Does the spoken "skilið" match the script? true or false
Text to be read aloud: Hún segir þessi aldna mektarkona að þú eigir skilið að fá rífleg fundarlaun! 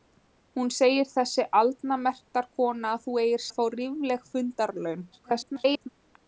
false